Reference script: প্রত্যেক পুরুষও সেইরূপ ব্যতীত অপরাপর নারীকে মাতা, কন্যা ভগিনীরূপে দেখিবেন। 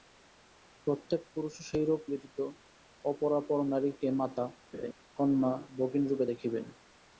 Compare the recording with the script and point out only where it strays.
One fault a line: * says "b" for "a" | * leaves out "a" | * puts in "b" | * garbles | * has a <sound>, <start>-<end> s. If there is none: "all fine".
* has a laugh, 4.7-4.9 s